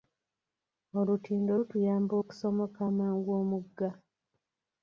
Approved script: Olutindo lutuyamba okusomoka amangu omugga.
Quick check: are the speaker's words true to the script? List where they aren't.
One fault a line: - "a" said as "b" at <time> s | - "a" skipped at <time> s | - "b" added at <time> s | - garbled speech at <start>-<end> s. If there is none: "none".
none